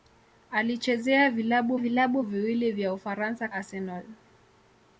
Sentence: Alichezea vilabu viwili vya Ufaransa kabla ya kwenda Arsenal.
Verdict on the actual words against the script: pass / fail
fail